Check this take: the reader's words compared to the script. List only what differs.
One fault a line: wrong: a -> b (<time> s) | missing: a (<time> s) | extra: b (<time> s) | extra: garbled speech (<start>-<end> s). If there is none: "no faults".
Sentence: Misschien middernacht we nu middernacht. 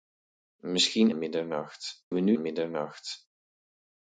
no faults